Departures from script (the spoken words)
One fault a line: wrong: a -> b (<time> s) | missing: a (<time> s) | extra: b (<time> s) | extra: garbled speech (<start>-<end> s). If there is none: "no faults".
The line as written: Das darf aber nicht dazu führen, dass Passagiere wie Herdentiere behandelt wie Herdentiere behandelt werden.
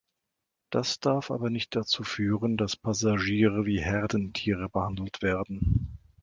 missing: wie Herdentiere behandelt (5.2 s)